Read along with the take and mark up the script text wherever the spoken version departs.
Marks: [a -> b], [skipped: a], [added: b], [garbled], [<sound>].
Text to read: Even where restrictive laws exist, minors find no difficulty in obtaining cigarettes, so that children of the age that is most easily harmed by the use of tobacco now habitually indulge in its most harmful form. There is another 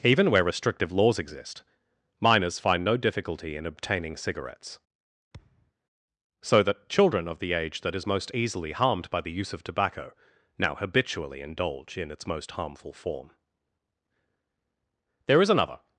Even where restrictive laws exist, minors find no difficulty in obtaining cigarettes, [thud] so that children of the age that is most easily harmed by the use of tobacco now habitually indulge in its most harmful form. There is another